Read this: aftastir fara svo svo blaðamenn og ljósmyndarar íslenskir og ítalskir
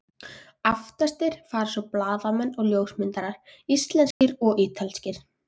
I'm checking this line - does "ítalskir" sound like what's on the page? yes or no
yes